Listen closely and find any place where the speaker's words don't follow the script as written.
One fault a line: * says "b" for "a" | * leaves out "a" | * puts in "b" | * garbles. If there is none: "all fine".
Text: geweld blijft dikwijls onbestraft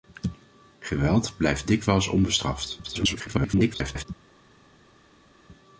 * garbles